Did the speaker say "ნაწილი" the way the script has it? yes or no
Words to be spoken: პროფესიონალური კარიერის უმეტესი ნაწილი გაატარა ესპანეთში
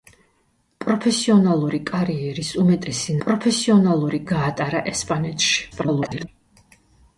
no